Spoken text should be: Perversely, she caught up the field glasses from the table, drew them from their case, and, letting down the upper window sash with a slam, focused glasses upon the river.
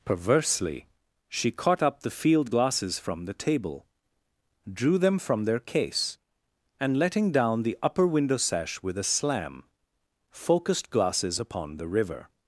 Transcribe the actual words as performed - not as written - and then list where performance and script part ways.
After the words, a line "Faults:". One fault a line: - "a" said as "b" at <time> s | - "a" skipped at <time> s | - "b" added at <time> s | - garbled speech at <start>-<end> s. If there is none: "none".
Perversely, she caught up the field glasses from the table, drew them from their case, and, letting down the upper window sash with a slam, focused glasses upon the river.
Faults:
none